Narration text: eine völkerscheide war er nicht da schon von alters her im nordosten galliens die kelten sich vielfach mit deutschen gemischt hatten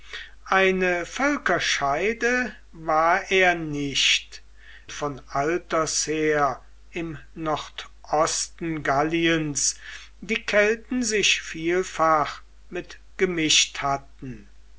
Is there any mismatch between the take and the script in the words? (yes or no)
yes